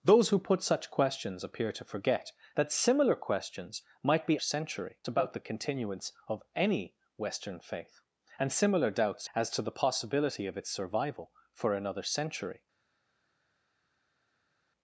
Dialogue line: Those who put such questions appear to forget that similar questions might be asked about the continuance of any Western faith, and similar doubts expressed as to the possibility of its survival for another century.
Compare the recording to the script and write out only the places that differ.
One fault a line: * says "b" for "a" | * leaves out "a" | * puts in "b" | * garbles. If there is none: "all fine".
* says "century" for "asked"
* leaves out "expressed"